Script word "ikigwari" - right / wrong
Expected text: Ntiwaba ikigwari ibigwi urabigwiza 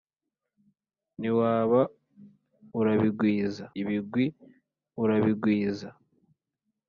wrong